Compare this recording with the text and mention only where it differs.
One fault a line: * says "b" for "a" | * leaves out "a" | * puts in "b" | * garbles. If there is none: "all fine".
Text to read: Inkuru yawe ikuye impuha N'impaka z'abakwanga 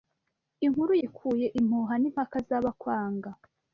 * leaves out "yawe"